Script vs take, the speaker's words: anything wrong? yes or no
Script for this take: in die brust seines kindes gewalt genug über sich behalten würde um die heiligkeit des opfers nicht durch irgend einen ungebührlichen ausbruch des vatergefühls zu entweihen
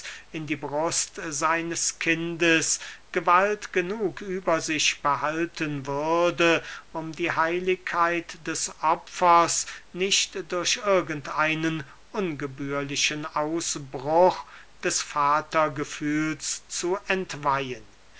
no